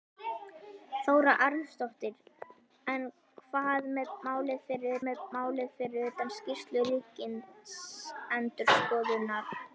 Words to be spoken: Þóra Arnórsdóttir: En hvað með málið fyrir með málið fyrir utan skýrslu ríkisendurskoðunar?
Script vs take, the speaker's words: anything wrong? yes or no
no